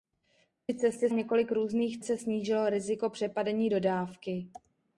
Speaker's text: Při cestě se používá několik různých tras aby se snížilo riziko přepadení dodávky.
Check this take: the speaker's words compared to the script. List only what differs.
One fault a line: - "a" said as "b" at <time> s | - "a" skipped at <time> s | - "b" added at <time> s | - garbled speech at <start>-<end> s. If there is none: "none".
- "se používá" skipped at 1.1 s
- "tras aby" skipped at 2.0 s